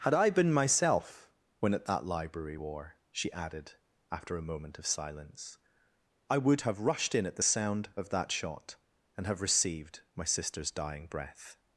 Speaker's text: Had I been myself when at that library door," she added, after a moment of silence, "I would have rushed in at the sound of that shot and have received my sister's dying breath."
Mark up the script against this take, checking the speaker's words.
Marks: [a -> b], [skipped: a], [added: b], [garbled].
Had I been myself when at that library [door," -> war] she added, after a moment of silence, "I would have rushed in at the sound of that shot and have received my sister's dying breath."